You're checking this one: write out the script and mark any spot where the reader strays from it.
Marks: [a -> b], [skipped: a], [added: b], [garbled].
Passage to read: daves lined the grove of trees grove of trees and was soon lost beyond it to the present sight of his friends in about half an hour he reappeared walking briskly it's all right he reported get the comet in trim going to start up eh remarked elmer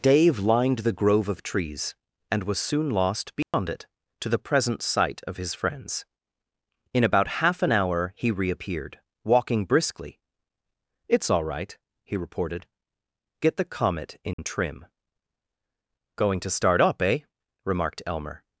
[daves -> dave] lined the grove of trees [skipped: grove of trees] and was soon lost beyond it to the present sight of his friends in about half an hour he reappeared walking briskly it's all right he reported get the comet in trim going to start up eh remarked elmer